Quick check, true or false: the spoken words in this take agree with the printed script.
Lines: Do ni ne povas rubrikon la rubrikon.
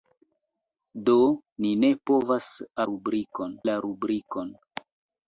true